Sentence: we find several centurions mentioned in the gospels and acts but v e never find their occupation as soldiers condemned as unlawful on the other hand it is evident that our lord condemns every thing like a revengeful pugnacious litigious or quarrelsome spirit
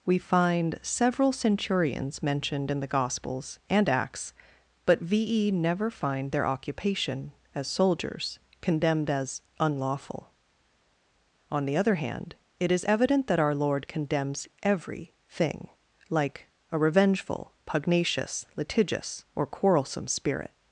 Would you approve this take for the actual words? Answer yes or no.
yes